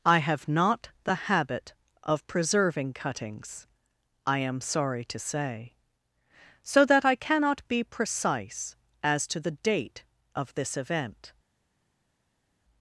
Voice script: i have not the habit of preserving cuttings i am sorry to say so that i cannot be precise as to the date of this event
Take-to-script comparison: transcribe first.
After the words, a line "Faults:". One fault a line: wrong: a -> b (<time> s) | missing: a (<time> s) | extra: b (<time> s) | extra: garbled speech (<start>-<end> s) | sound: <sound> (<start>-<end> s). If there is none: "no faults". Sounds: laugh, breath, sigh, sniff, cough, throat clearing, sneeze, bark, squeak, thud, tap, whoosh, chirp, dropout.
i have not the habit of preserving cuttings i am sorry to say so that i cannot be precise as to the date of this event
Faults:
no faults